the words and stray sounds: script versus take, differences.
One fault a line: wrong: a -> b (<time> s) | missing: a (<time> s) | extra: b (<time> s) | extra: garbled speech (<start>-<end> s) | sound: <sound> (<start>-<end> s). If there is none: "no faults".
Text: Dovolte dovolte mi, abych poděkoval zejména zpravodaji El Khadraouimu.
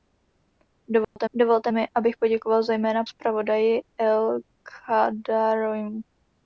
sound: dropout (1.0-1.2 s)